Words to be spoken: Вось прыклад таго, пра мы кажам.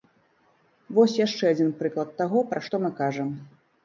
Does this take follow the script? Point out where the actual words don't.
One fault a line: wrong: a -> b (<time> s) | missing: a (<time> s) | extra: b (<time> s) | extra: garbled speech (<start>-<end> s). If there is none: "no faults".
extra: яшчэ адзін (1.2 s)
extra: што (2.7 s)